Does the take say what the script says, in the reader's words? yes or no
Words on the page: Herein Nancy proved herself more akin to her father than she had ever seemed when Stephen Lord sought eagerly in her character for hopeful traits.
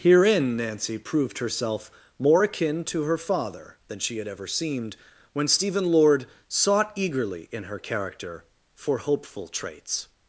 yes